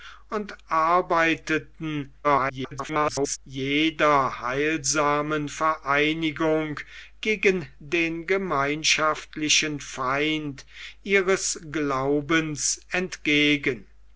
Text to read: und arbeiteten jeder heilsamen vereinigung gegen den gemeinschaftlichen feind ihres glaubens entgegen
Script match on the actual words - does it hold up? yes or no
no